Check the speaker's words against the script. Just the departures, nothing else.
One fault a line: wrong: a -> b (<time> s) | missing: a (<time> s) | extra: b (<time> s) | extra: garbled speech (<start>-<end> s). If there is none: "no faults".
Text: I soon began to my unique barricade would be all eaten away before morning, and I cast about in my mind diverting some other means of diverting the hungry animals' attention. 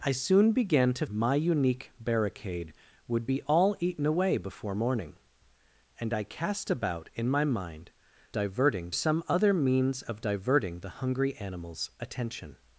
no faults